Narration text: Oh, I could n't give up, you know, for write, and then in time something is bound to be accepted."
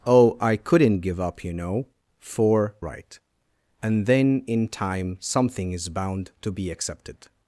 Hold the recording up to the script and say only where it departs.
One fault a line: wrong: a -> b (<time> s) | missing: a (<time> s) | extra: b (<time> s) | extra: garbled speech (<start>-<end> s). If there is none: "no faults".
no faults